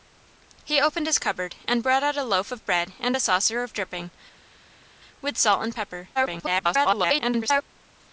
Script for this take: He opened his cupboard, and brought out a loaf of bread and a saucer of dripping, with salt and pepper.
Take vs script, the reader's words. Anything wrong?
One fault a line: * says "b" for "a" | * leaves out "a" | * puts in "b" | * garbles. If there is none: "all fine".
* garbles